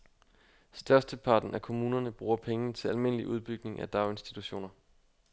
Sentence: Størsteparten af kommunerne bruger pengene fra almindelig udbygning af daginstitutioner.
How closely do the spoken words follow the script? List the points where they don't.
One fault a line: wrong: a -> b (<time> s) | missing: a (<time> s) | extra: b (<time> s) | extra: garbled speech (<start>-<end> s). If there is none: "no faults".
wrong: fra -> til (2.7 s)